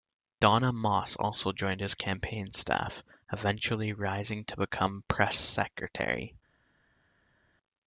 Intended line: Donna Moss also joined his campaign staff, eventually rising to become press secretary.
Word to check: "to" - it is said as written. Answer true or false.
true